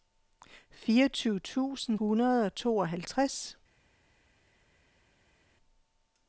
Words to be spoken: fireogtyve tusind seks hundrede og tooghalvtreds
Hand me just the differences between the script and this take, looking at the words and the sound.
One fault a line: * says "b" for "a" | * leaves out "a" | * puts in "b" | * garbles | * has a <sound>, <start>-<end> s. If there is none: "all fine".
* leaves out "seks"